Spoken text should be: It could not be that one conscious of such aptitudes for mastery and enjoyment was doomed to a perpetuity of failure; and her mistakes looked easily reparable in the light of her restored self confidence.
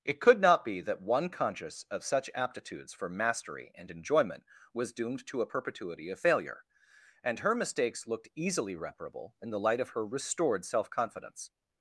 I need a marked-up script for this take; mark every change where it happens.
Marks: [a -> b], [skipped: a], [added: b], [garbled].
It could not be that one conscious of such aptitudes for mastery and enjoyment was doomed to a perpetuity of failure; and her mistakes looked easily reparable in the light of her restored self confidence.